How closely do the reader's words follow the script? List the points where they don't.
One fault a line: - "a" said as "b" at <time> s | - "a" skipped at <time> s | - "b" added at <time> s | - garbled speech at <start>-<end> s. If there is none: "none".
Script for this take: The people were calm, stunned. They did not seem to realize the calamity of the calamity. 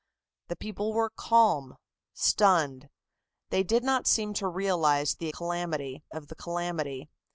none